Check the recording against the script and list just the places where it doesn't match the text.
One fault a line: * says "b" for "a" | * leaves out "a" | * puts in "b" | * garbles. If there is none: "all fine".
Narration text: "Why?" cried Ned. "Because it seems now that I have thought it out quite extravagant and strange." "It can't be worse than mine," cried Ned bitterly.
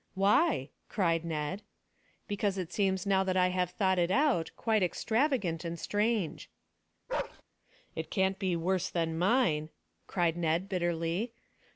all fine